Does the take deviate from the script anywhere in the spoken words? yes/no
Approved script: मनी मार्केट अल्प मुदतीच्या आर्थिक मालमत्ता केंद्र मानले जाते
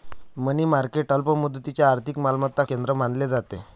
no